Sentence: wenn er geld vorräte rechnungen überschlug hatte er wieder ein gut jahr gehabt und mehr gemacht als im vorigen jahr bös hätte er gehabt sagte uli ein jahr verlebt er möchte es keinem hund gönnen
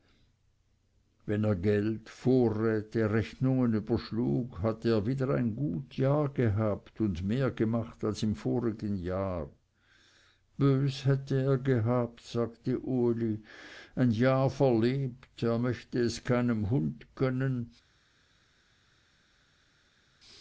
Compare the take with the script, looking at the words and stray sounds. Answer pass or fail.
pass